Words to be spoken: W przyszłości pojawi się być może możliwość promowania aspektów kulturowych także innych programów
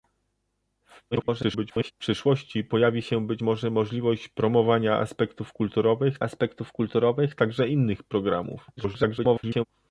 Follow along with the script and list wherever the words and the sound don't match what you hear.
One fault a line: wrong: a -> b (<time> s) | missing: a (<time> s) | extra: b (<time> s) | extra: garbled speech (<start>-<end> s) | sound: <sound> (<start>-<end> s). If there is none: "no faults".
extra: garbled speech (1.1-1.9 s)
extra: aspektów kulturowych (6.2 s)
extra: garbled speech (8.8-9.6 s)